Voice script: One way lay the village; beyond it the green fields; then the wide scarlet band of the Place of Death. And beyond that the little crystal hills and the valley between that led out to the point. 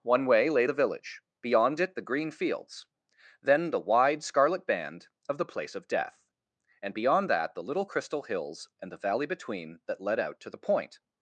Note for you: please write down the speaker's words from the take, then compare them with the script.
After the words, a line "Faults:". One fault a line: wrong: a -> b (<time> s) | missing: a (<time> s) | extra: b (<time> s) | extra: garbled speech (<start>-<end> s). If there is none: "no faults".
One way lay the village; beyond it the green fields; then the wide scarlet band of the Place of Death. And beyond that the little crystal hills and the valley between that led out to the point.
Faults:
no faults